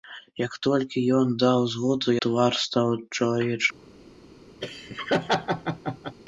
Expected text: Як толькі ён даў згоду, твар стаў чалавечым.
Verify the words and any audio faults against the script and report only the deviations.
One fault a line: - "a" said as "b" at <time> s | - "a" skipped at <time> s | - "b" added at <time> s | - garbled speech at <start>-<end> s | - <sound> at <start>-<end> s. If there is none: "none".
- laugh at 4.6-6.2 s